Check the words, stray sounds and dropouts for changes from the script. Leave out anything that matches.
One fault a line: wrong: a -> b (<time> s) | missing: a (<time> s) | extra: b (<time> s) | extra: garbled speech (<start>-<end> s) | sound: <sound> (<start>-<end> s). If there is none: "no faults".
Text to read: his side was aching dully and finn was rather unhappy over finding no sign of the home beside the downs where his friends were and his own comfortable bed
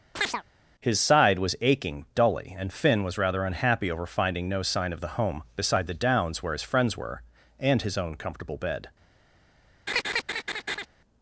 sound: chirp (0.2-0.4 s)
sound: laugh (9.9-10.9 s)